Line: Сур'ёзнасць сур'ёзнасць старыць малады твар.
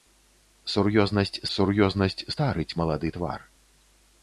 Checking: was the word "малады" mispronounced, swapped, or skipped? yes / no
no